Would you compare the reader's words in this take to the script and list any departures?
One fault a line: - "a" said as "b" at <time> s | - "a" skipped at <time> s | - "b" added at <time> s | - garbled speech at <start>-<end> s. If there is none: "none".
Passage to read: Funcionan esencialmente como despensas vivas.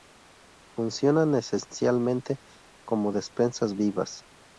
none